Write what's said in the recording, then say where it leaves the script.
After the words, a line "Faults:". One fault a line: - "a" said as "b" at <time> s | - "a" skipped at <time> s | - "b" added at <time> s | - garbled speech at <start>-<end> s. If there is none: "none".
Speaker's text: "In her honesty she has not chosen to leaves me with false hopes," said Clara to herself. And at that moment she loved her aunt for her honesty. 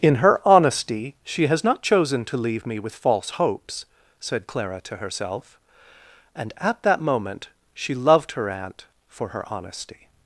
"In her honesty she has not chosen to leave me with false hopes," said Clara to herself. And at that moment she loved her aunt for her honesty.
Faults:
- "leaves" said as "leave" at 2.4 s